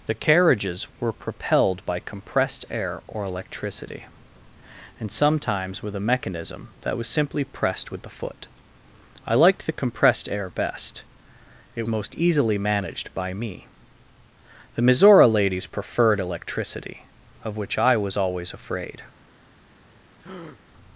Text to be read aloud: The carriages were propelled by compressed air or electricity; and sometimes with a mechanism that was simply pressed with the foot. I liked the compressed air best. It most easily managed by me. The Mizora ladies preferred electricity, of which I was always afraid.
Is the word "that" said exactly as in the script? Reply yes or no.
yes